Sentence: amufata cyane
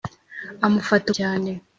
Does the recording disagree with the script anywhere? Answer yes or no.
no